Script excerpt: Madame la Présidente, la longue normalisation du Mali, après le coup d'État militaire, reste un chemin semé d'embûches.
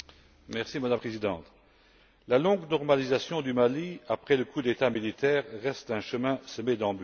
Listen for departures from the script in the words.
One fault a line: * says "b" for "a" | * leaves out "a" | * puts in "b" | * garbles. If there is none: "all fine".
* leaves out "la"